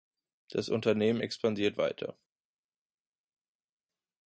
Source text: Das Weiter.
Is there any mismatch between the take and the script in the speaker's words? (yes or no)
yes